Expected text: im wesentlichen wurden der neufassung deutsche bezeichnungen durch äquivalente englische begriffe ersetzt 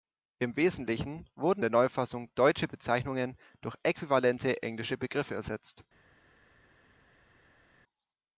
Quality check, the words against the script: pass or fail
pass